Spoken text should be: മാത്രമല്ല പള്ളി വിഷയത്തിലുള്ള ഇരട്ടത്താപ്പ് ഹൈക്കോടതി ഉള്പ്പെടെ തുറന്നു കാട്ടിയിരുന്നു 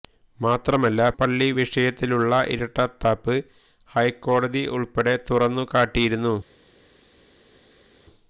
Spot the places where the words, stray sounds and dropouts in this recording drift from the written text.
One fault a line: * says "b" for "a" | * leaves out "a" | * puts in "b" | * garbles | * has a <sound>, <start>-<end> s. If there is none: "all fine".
all fine